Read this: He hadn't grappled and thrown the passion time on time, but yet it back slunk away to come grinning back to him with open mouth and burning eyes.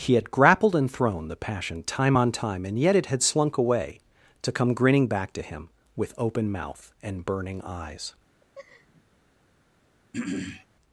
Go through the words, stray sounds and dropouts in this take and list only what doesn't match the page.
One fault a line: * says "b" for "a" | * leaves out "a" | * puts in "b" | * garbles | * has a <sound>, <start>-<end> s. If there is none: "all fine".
* says "had" for "hadn't"
* says "and" for "but"
* says "had" for "back"
* has a laugh, 8.4-9.0 s
* has a throat clearing, 10.1-10.7 s